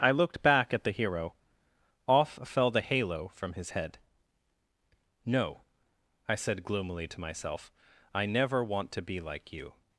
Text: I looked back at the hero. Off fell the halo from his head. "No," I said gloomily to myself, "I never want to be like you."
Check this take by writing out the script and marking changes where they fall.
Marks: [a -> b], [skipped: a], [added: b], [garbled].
I looked back at the hero. Off fell the halo from his head. "No," I said gloomily to myself, "I never want to be like you."